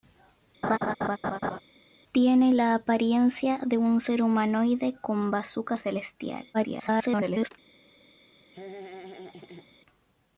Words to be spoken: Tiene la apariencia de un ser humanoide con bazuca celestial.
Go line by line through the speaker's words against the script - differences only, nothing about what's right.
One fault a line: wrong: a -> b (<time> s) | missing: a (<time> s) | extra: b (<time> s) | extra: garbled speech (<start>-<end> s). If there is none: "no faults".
extra: garbled speech (6.5-7.5 s)